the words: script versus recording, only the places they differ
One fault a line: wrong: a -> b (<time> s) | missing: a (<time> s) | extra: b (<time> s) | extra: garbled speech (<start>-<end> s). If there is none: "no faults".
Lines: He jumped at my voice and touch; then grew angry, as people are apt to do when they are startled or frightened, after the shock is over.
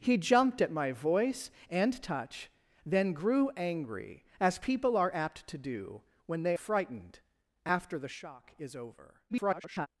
missing: are startled or (6.6 s)
extra: garbled speech (9.3-9.9 s)